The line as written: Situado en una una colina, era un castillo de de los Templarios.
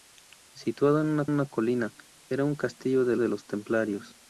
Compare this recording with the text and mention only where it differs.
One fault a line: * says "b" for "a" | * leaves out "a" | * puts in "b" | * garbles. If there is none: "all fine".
all fine